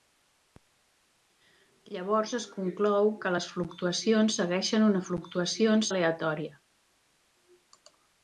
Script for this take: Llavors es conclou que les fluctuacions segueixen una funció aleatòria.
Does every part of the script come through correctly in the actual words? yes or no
no